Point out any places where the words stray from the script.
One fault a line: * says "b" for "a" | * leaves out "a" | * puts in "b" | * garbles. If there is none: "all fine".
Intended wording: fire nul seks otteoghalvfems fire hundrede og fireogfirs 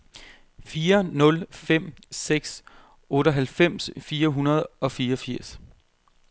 * puts in "fem"